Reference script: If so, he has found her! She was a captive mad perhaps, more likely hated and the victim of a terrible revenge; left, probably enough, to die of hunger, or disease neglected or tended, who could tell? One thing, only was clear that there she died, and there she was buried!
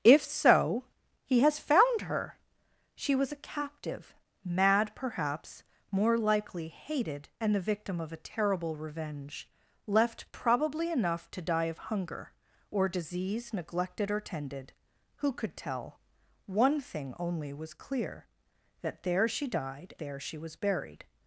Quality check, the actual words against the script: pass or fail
fail